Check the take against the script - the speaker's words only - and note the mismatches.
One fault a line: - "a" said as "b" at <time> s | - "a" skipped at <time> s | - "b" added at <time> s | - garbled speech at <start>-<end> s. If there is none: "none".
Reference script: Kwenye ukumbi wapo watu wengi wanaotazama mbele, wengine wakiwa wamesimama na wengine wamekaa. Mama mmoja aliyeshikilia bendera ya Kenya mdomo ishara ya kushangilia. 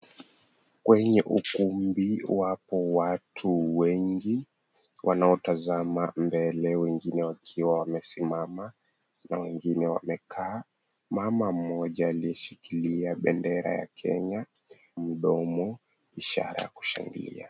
none